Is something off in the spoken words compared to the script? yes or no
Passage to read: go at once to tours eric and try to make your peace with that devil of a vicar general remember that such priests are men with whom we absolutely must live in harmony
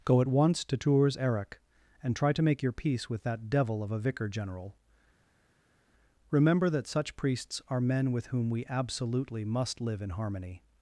no